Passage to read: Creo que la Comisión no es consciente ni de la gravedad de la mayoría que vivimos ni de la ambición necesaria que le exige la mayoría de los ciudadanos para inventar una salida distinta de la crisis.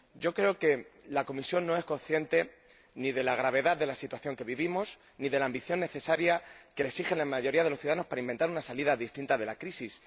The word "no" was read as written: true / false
true